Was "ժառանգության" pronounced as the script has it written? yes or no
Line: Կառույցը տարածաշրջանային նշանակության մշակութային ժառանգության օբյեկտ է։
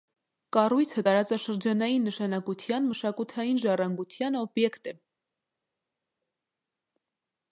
yes